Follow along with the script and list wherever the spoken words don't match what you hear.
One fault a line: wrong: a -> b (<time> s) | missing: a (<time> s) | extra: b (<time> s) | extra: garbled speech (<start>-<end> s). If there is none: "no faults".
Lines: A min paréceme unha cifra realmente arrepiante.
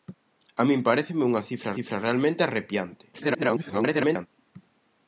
extra: cifra (1.7 s)
extra: garbled speech (3.1-4.3 s)